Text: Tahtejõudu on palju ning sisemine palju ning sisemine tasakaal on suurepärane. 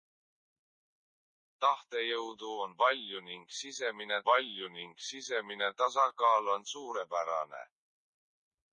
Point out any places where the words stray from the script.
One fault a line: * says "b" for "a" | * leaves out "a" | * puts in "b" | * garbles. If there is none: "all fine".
all fine